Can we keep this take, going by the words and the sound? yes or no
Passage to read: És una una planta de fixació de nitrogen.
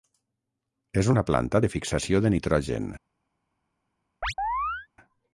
no